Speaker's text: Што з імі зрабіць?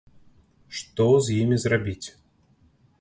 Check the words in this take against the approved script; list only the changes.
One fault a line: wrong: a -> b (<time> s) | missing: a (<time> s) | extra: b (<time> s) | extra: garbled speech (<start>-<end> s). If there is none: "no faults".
no faults